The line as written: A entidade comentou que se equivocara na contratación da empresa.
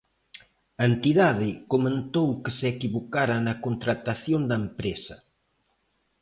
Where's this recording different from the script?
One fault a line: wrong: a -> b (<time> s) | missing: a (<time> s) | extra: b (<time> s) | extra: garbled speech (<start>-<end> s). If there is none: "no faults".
no faults